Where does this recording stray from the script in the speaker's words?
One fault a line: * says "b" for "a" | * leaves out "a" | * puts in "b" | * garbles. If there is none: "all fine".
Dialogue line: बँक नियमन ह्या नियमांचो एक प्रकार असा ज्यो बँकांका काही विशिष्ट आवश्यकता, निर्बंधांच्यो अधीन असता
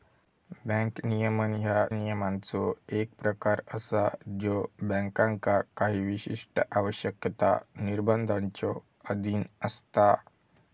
all fine